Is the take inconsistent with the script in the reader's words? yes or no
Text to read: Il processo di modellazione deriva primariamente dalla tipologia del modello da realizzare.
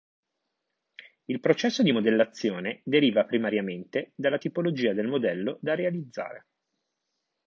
no